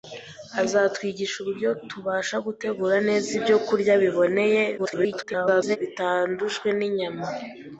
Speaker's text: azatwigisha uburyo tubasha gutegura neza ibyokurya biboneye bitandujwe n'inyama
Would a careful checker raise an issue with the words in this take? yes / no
yes